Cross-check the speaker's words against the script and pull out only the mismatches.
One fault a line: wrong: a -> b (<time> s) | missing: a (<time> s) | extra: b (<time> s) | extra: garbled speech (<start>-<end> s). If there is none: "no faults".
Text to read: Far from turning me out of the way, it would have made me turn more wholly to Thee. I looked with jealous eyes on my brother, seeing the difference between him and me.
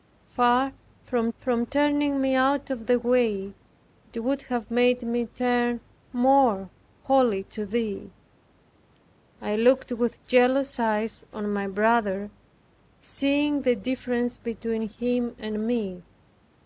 extra: from (1.4 s)